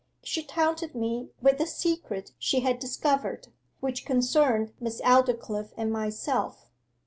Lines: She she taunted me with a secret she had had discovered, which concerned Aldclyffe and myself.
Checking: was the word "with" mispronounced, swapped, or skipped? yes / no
no